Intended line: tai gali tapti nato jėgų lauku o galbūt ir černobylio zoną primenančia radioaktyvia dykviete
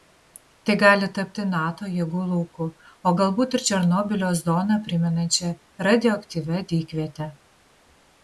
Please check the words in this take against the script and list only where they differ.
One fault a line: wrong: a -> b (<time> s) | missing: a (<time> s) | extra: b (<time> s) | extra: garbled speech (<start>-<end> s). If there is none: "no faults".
no faults